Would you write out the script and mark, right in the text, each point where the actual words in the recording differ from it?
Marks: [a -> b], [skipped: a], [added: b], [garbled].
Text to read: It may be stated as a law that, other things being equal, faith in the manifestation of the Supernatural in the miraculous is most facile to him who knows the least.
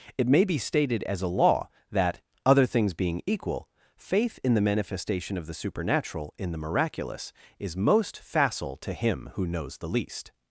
It may be stated as a law that, other things being equal, faith in the manifestation of the Supernatural in the miraculous is most facile to him who knows the least.